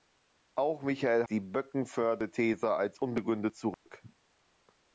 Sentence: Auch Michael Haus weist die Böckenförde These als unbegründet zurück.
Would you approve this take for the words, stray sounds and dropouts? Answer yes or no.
no